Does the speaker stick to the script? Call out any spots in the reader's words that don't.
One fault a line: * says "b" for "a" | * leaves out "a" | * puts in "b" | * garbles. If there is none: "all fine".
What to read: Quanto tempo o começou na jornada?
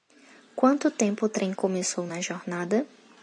* puts in "trem"